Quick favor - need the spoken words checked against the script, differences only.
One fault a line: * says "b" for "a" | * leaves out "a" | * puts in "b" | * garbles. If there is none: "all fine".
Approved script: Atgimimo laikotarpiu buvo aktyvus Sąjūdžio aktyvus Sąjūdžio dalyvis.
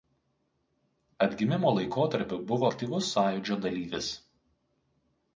* leaves out "aktyvus Sąjūdžio"